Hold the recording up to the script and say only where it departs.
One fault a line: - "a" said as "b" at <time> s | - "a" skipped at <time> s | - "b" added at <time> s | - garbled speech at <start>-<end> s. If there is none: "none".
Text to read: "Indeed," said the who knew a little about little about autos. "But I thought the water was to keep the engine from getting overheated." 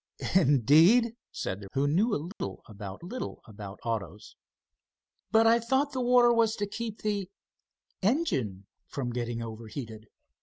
none